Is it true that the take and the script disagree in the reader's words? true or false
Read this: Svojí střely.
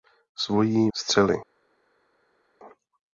false